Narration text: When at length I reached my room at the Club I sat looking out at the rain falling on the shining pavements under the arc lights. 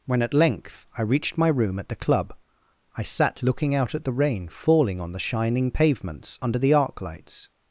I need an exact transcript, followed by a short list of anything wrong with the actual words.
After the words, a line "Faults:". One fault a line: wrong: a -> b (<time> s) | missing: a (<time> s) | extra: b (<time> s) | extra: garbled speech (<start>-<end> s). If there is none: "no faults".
When at length I reached my room at the Club I sat looking out at the rain falling on the shining pavements under the arc lights.
Faults:
no faults